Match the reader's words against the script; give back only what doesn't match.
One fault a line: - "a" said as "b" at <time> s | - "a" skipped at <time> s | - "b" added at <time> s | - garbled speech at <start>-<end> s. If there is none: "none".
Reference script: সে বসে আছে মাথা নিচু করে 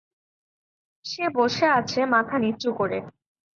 none